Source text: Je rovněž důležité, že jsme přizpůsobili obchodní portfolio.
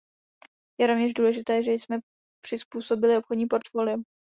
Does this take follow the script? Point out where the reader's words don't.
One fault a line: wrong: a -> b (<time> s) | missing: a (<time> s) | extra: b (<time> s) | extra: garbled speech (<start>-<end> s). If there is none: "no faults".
no faults